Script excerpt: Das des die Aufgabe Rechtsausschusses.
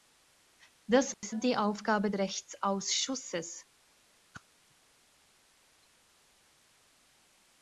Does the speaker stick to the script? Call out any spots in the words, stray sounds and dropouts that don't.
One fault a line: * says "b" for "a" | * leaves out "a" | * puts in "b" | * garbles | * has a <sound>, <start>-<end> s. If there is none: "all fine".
* has a dropout, 1.1-1.2 s
* has a whoosh, 4.3-4.4 s